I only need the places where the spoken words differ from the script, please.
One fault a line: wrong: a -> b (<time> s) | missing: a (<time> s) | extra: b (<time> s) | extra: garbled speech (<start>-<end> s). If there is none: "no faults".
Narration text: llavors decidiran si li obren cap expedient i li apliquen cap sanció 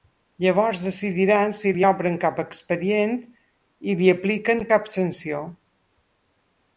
no faults